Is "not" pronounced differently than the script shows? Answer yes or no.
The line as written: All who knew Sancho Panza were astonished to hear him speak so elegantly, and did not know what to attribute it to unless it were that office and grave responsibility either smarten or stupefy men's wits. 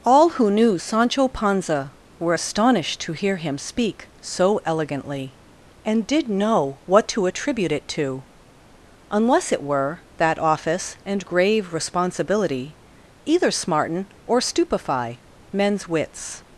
yes